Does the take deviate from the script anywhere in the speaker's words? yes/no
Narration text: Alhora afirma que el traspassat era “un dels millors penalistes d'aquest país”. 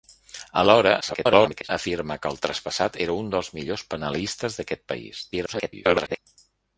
yes